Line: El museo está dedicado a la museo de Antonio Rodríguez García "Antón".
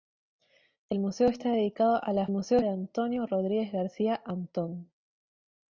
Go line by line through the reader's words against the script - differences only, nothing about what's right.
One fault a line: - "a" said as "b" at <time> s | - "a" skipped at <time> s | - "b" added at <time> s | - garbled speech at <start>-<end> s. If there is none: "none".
none